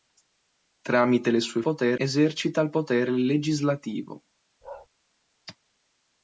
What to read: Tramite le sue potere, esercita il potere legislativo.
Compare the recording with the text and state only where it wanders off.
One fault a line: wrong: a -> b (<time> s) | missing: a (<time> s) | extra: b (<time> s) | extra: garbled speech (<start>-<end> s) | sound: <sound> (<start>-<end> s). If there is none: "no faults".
sound: bark (4.6-4.9 s)